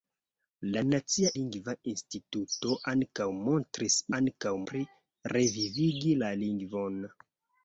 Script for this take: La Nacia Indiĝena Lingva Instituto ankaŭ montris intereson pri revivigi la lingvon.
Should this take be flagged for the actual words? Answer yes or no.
yes